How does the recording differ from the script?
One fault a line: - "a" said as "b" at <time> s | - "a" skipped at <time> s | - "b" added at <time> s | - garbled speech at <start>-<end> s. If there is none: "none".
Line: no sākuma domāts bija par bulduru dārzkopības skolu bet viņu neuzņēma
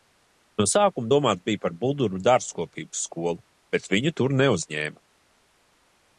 - "tur" added at 4.2 s